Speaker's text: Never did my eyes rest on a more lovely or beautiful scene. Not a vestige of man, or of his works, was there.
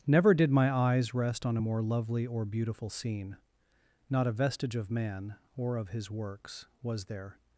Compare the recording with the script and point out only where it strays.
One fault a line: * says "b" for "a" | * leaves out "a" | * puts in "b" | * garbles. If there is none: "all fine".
all fine